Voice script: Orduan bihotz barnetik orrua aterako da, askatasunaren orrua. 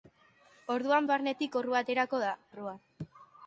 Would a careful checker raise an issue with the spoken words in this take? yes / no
yes